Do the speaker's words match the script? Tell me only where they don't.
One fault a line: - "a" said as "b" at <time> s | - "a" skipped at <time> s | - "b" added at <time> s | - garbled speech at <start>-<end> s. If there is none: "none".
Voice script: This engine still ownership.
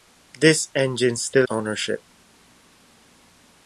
none